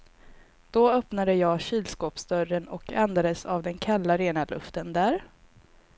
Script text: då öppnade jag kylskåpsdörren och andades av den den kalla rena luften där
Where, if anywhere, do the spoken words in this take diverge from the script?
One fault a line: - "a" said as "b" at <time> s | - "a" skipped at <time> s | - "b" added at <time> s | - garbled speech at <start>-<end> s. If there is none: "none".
- "den" skipped at 3.8 s